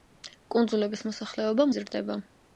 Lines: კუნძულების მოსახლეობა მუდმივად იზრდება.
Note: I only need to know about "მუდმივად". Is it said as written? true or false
false